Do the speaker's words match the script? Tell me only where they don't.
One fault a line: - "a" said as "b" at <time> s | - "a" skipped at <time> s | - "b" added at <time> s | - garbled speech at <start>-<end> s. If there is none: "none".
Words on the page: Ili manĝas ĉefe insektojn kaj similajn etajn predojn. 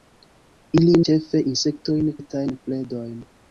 - "manĝas" skipped at 0.9 s
- "kaj similajn" skipped at 2.1 s